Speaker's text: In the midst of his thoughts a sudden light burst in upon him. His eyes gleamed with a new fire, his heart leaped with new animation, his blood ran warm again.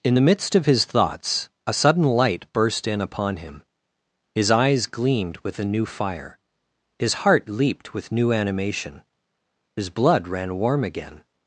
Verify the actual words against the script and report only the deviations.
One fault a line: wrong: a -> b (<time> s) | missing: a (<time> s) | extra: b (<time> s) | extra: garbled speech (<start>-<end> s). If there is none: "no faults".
no faults